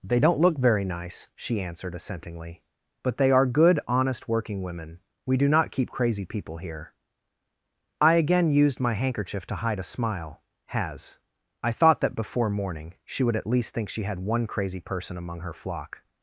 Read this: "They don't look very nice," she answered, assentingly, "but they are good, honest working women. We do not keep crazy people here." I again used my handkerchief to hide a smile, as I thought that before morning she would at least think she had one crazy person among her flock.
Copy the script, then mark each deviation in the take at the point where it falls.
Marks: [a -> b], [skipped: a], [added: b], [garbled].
"They don't look very nice," she answered, assentingly, "but they are good, honest working women. We do not keep crazy people here." I again used my handkerchief to hide a smile, [as -> has] I thought that before morning she would at least think she had one crazy person among her flock.